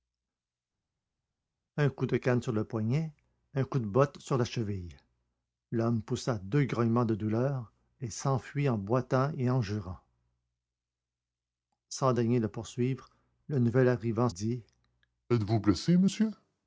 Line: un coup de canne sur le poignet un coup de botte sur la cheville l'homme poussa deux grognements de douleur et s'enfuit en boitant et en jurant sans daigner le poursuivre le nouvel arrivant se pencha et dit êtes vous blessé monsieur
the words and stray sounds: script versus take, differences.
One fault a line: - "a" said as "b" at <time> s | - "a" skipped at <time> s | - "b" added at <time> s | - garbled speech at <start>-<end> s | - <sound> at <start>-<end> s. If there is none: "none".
- "se pencha et" skipped at 14.3 s